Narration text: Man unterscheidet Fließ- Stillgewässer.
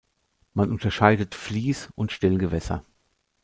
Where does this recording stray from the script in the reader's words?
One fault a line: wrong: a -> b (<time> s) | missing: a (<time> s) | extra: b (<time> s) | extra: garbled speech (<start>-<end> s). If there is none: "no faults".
extra: und (2.0 s)